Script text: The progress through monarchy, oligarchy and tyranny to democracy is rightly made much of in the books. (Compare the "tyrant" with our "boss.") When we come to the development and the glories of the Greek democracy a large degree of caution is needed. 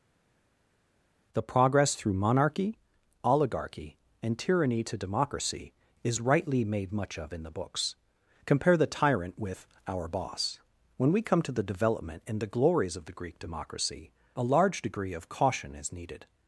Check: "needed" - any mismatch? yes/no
no